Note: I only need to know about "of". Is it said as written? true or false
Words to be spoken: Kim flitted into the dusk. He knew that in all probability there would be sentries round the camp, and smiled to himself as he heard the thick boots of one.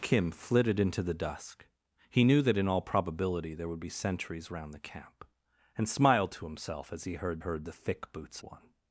false